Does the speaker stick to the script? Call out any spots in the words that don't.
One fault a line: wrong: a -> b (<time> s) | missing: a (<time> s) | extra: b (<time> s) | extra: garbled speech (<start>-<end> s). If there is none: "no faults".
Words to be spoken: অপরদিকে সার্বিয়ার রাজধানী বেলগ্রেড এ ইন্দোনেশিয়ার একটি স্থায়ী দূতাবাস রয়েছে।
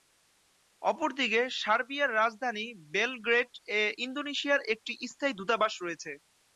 no faults